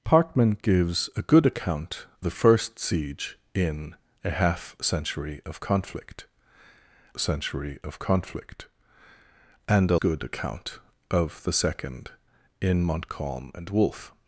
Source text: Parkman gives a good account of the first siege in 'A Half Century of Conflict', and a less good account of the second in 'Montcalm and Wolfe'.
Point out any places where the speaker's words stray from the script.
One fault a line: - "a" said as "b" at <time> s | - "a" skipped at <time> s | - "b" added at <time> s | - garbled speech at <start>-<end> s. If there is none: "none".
- "of" skipped at 2.1 s
- "Century of Conflict" added at 7.2 s
- "less" skipped at 10.0 s